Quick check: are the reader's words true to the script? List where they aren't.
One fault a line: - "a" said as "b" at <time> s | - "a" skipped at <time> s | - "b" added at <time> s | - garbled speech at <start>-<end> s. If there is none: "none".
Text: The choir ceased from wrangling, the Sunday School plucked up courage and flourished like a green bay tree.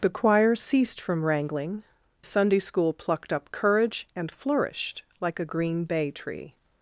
- "the" skipped at 1.8 s